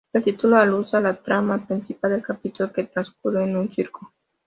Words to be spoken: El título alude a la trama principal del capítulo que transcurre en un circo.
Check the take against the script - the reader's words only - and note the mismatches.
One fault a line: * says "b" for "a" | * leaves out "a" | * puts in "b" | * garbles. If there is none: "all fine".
all fine